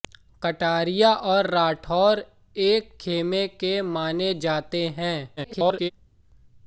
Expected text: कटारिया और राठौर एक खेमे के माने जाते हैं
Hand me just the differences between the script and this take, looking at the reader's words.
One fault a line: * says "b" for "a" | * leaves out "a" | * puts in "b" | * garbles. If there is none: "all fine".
* garbles